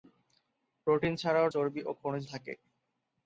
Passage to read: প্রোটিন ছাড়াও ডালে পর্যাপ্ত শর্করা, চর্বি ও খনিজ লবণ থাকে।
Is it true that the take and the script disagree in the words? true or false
true